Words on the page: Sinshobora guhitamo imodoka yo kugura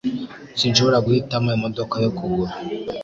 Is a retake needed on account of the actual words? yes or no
no